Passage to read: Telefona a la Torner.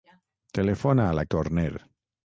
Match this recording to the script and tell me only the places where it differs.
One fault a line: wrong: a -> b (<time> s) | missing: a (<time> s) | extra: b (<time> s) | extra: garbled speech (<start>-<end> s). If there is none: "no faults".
no faults